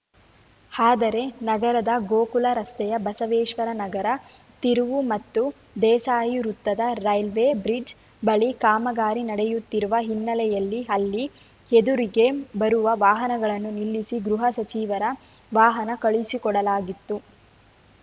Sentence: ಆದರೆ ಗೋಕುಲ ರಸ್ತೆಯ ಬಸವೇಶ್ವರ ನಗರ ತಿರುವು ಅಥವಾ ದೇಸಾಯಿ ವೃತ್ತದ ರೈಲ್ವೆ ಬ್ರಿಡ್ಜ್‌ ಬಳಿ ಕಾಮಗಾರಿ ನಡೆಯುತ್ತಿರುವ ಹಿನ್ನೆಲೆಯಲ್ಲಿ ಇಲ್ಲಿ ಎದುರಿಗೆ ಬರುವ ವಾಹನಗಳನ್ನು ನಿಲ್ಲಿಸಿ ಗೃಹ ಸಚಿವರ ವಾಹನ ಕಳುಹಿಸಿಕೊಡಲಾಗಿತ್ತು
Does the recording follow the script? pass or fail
fail